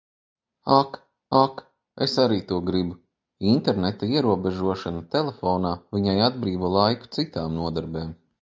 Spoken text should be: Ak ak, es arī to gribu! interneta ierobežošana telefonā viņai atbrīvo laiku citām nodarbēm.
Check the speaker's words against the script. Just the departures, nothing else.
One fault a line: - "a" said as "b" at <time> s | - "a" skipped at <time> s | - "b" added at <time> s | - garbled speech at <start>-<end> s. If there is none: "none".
none